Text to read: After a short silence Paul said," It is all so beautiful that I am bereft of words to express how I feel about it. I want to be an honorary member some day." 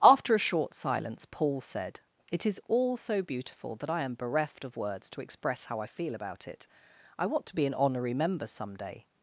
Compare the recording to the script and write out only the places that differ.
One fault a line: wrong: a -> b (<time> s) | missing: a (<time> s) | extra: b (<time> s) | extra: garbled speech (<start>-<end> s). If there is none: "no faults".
no faults